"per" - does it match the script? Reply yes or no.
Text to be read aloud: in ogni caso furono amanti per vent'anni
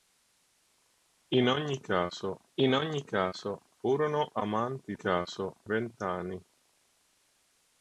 no